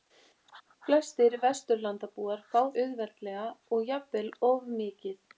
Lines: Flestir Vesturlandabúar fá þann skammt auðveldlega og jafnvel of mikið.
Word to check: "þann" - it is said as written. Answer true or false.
false